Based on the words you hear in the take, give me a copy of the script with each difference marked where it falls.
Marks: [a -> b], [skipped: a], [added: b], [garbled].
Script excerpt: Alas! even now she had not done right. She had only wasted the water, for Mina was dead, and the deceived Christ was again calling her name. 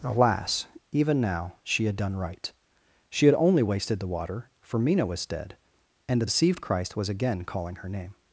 Alas! even now she had [skipped: not] done right. She had only wasted the water, for Mina was dead, and the deceived Christ was again calling her name.